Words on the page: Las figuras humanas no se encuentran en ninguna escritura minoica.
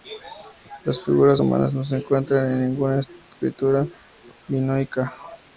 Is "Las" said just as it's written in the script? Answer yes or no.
yes